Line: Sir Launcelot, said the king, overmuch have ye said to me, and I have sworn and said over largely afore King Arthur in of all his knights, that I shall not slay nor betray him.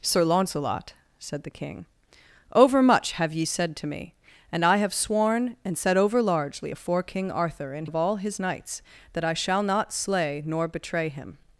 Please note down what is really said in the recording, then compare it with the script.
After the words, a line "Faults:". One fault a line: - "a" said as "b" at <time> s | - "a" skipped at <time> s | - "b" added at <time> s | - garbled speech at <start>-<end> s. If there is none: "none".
Sir Launcelot, said the king, overmuch have ye said to me, and I have sworn and said over largely afore King Arthur in of all his knights, that I shall not slay nor betray him.
Faults:
none